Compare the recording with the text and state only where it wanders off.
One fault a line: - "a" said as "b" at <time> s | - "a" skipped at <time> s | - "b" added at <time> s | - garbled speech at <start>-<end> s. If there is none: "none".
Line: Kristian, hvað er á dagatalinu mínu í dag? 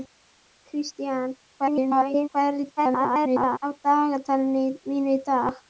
- garbled speech at 1.6-2.3 s
- garbled speech at 2.8-3.6 s